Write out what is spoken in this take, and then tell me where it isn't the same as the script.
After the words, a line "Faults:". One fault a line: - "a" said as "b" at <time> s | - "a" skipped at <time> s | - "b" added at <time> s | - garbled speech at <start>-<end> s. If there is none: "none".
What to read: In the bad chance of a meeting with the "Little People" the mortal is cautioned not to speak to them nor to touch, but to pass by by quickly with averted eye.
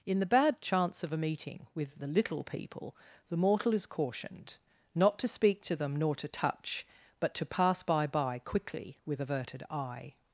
In the bad chance of a meeting with the "Little People" the mortal is cautioned not to speak to them nor to touch, but to pass by by quickly with averted eye.
Faults:
none